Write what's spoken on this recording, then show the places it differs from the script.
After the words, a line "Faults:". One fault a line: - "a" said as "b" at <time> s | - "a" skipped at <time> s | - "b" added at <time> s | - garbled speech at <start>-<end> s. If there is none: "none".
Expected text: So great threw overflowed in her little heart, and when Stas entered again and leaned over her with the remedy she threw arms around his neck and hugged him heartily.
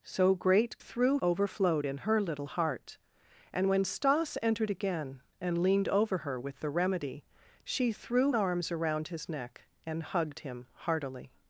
So great threw overflowed in her little heart, and when Stas entered again and leaned over her with the remedy she threw arms around his neck and hugged him heartily.
Faults:
none